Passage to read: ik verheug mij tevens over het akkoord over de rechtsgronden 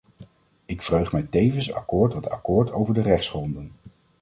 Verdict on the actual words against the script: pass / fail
fail